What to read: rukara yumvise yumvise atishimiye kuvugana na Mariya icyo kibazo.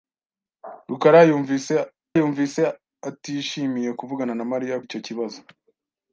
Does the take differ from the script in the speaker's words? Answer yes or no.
no